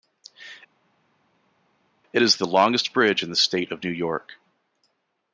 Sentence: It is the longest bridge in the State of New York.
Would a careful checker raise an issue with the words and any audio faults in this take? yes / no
no